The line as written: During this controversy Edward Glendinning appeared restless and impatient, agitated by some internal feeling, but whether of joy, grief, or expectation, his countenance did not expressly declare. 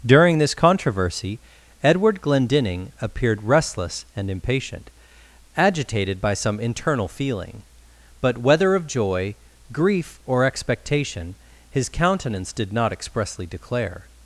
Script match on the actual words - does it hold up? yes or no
yes